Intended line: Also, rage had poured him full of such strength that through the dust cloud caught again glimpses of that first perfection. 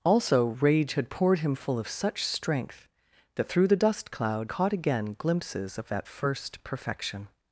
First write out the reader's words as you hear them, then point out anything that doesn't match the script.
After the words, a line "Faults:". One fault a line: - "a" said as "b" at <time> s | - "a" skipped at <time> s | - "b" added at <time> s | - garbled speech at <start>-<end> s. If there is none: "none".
Also, rage had poured him full of such strength that through the dust cloud caught again glimpses of that first perfection.
Faults:
none